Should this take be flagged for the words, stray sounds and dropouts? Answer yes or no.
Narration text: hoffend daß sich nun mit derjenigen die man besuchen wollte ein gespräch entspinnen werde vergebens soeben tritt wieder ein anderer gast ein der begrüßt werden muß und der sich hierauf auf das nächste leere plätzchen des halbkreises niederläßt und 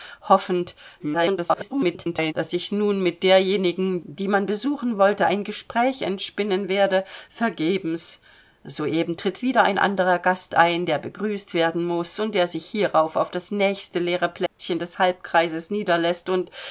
yes